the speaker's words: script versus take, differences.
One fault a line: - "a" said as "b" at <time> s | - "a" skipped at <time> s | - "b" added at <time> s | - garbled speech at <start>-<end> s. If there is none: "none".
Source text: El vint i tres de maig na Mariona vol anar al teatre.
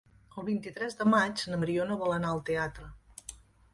none